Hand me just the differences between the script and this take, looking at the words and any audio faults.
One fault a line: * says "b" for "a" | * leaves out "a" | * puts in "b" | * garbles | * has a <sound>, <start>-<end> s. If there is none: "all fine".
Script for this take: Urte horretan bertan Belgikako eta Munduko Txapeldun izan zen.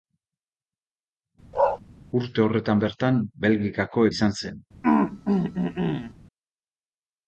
* has a bark, 1.5-1.8 s
* leaves out "eta Munduko Txapeldun"
* has a throat clearing, 4.8-6.1 s